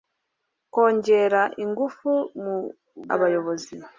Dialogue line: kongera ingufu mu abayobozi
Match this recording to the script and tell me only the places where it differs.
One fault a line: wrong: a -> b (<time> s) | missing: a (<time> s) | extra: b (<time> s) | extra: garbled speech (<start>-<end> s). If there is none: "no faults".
no faults